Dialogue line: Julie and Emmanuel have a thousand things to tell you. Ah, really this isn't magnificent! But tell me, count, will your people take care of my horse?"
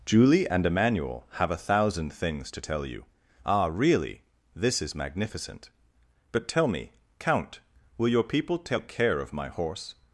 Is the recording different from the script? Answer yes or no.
yes